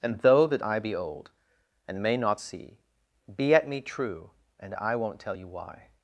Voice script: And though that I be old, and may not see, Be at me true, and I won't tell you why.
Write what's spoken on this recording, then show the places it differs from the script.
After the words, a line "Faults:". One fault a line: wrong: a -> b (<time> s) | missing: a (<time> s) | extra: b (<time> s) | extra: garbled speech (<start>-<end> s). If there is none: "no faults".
And though that I be old, and may not see, Be at me true, and I won't tell you why.
Faults:
no faults